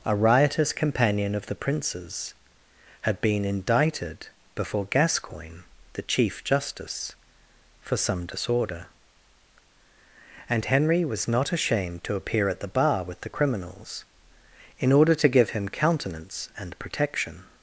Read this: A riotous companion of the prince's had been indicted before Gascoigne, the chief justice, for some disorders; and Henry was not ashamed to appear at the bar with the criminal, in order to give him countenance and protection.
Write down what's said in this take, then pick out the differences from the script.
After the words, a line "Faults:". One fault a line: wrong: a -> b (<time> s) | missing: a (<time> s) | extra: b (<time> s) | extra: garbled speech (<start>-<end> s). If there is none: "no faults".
A riotous companion of the prince's had been indicted before Gascoigne, the chief justice, for some disorder; and Henry was not ashamed to appear at the bar with the criminals, in order to give him countenance and protection.
Faults:
wrong: disorders -> disorder (8.2 s)
wrong: criminal -> criminals (13.3 s)